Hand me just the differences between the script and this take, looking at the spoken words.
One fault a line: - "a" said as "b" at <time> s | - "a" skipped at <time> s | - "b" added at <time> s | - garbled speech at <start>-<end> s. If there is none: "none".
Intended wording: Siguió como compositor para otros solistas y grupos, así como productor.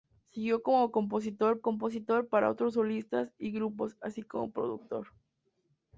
- "compositor" added at 1.6 s